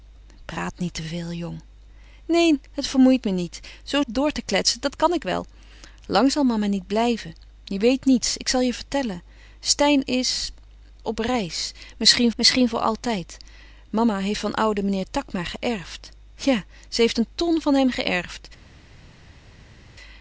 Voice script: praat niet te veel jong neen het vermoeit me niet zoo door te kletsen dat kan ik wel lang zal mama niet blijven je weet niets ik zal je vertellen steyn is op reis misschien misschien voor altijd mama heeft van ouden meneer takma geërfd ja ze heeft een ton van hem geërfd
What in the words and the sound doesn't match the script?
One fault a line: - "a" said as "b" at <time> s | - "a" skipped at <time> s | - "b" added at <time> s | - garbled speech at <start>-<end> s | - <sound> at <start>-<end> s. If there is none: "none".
none